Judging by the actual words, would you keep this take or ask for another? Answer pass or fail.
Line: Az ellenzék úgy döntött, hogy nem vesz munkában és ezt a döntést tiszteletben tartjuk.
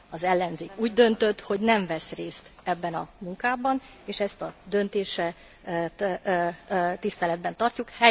fail